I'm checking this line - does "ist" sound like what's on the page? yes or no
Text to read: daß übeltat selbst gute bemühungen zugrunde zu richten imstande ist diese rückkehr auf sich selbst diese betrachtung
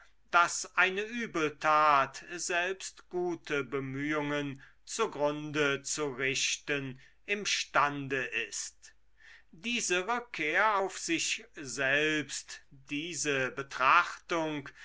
yes